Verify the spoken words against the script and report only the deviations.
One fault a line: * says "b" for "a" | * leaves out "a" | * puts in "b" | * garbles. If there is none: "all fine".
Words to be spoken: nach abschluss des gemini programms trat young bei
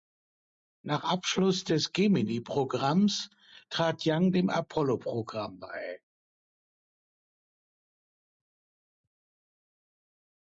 * puts in "dem apollo programm"